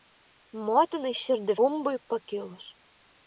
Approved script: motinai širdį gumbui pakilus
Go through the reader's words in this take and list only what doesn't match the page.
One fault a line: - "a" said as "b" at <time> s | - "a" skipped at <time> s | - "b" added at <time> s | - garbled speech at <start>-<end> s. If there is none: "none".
none